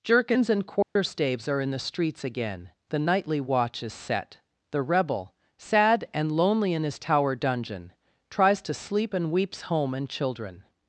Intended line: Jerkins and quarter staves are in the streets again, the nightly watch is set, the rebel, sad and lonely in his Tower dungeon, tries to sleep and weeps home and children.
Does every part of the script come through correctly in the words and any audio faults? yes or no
no